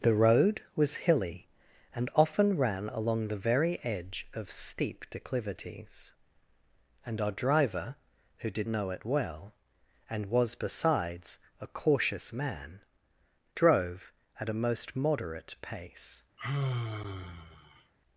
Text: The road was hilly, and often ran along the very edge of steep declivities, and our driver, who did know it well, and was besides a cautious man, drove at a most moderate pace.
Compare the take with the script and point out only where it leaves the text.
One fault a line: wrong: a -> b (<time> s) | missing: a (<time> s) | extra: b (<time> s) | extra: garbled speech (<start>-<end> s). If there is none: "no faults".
no faults